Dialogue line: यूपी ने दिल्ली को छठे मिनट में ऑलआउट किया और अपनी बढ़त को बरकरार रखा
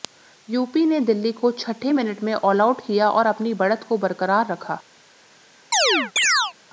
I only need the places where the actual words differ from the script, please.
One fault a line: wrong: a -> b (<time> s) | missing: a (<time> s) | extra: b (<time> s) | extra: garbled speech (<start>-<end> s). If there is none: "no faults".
no faults